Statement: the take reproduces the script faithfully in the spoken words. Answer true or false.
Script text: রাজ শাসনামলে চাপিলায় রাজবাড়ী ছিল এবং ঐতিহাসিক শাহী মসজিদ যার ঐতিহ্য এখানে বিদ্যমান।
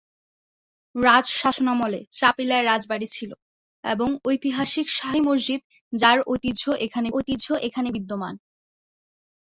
false